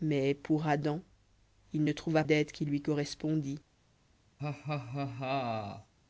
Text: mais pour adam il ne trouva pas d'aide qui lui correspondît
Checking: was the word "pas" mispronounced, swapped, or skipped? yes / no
yes